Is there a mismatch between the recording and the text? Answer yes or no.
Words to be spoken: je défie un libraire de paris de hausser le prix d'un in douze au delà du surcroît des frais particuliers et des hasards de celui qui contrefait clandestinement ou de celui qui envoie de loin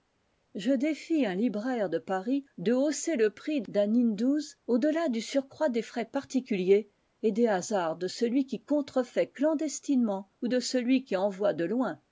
no